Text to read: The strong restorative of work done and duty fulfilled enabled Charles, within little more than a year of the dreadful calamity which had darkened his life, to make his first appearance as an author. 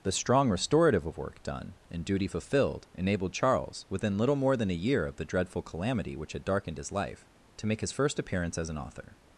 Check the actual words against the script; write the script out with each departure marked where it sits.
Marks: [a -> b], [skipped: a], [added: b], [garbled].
The strong restorative of work done and duty fulfilled enabled Charles, within little more than a year of the dreadful calamity which had darkened his life, to make his first appearance as an author.